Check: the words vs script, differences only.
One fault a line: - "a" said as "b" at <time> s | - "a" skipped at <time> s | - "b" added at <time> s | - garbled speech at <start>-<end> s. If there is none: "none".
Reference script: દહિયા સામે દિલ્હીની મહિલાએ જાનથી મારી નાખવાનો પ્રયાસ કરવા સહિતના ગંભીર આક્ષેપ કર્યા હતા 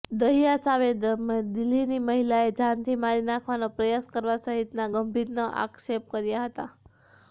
none